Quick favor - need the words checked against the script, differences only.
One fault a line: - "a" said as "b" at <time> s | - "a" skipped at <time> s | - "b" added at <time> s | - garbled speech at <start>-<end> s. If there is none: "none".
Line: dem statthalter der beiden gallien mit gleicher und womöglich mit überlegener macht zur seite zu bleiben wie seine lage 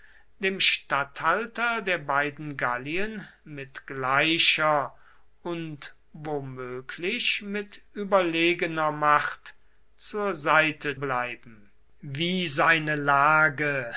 - "zu" skipped at 11.0 s